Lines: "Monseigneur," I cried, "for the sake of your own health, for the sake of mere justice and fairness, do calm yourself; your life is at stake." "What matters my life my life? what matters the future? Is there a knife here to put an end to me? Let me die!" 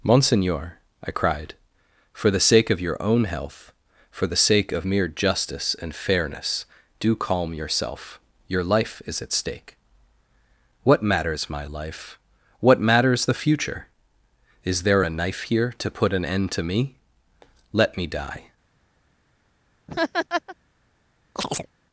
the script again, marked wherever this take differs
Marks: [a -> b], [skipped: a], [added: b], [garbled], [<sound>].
"Monseigneur," I cried, "for the sake of your own health, for the sake of mere justice and fairness, do calm yourself; your life is at stake." "What matters my life [skipped: my life?] what matters the future? Is there a knife here to put an end to me? Let me die!" [laugh] [chirp]